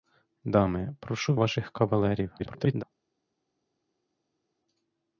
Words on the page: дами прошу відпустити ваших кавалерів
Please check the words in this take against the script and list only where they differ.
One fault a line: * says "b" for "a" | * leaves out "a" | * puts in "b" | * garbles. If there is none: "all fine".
* leaves out "відпустити"
* garbles